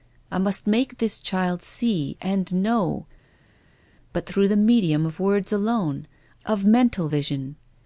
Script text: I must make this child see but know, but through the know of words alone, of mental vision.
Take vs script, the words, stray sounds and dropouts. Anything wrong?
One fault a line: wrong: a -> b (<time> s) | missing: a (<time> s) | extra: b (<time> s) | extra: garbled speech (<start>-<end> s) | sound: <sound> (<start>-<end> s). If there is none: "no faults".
wrong: but -> and (2.2 s)
wrong: know -> medium (4.5 s)